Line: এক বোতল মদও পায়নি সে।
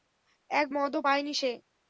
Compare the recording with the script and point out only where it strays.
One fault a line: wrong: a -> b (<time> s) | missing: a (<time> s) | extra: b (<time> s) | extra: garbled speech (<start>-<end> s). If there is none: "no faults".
missing: বোতল (0.7 s)